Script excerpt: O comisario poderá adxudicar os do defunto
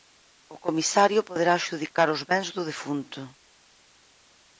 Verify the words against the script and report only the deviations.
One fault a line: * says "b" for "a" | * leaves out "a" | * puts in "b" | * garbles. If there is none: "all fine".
* puts in "bens"